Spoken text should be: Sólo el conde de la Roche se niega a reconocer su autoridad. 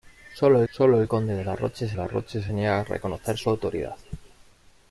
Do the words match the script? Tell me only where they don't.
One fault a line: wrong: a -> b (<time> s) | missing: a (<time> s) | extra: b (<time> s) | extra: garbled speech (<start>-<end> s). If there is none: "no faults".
extra: sólo (0.7 s)
extra: la Roche se (1.9 s)